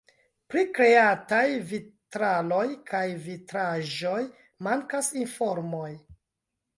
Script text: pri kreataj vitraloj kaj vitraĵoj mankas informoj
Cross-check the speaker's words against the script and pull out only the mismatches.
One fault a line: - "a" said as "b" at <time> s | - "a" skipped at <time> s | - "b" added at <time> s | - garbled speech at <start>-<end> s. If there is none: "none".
none